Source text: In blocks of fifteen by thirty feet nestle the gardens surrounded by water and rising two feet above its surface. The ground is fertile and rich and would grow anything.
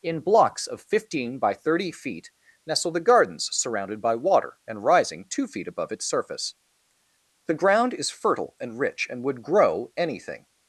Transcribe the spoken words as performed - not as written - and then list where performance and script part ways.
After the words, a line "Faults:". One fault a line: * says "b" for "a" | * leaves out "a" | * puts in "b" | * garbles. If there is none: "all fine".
In blocks of fifteen by thirty feet nestle the gardens surrounded by water and rising two feet above its surface. The ground is fertile and rich and would grow anything.
Faults:
all fine